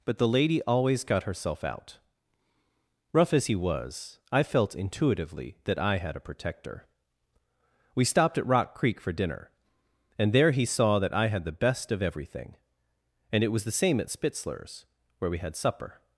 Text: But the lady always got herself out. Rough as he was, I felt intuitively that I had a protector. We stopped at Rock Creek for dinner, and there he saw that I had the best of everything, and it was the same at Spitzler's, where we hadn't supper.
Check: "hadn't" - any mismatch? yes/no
yes